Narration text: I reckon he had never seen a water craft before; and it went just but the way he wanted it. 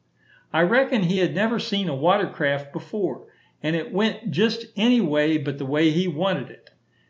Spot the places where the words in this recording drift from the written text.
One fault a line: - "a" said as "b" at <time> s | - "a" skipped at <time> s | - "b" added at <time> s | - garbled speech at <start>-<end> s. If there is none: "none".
- "any way" added at 4.8 s